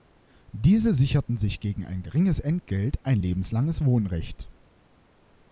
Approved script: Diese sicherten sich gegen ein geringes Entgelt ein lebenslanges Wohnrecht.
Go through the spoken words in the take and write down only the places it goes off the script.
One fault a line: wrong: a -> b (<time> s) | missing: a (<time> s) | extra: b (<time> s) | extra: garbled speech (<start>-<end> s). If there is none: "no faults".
no faults